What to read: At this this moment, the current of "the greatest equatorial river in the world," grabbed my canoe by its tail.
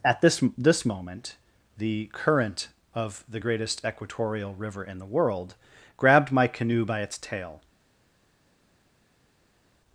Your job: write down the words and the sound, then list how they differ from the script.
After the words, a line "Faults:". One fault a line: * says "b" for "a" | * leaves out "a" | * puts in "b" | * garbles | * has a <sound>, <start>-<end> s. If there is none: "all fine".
At this this moment, the current of "the greatest equatorial river in the world," grabbed my canoe by its tail.
Faults:
all fine